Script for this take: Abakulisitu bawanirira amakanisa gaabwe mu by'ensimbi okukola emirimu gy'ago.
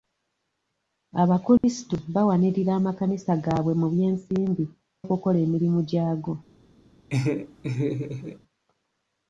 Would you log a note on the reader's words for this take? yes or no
no